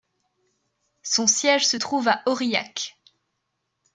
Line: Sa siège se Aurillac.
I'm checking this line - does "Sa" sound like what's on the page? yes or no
no